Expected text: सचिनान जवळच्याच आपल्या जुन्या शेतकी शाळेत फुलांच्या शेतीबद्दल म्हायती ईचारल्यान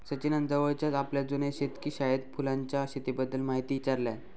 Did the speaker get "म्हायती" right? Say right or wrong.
right